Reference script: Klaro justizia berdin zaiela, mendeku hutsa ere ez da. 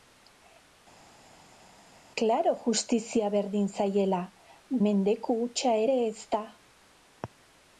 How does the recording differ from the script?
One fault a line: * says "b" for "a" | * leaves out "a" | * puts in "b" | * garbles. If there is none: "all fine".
all fine